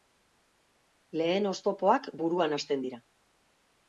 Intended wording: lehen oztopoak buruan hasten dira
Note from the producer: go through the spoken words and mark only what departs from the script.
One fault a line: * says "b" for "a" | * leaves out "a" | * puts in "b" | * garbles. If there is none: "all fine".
all fine